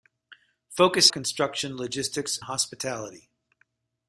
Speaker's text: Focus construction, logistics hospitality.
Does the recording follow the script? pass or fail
pass